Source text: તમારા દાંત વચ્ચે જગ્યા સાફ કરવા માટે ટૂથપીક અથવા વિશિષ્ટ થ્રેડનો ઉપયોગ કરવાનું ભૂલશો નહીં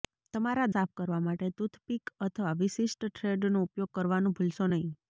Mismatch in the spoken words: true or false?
true